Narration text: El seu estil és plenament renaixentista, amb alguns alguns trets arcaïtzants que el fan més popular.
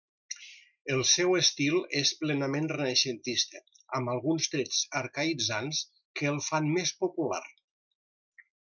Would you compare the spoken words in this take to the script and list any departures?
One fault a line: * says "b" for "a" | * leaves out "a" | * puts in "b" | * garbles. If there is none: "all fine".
* leaves out "alguns"